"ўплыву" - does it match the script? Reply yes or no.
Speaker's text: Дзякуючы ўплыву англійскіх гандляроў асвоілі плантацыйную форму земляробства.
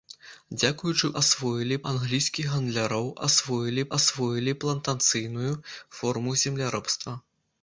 no